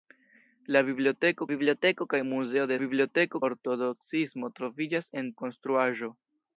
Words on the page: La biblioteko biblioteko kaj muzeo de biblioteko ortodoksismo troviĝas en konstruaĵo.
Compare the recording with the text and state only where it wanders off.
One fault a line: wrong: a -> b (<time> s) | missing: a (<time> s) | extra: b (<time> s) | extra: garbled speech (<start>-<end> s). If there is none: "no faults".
no faults